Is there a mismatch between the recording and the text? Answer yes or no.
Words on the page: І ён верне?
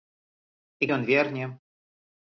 no